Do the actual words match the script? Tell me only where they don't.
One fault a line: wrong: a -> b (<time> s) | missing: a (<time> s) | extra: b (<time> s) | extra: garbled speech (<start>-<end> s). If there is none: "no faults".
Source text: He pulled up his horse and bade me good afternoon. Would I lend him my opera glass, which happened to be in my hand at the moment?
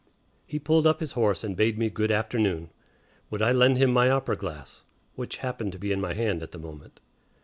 no faults